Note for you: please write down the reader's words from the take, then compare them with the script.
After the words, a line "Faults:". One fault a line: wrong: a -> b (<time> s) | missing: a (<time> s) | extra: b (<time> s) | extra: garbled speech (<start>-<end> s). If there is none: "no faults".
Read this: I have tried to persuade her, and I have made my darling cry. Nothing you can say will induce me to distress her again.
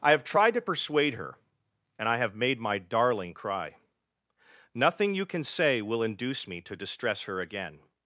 I have tried to persuade her, and I have made my darling cry. Nothing you can say will induce me to distress her again.
Faults:
no faults